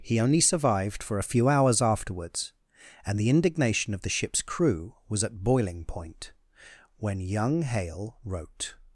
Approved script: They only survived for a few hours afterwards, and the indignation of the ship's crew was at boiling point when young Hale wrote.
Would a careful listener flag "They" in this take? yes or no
yes